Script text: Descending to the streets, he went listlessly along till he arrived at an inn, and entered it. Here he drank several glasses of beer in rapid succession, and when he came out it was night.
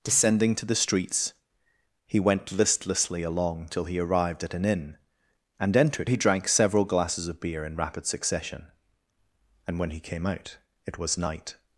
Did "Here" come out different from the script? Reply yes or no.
yes